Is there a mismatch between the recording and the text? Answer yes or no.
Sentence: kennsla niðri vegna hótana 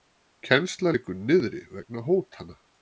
yes